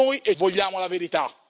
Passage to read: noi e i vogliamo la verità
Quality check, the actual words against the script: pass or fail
pass